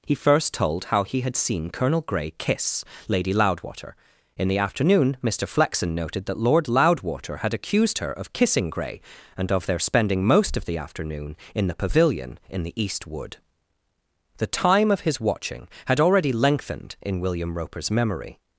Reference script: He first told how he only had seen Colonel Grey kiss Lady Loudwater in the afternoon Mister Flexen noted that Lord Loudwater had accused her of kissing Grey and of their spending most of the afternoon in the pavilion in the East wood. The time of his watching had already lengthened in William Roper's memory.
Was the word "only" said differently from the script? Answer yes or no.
yes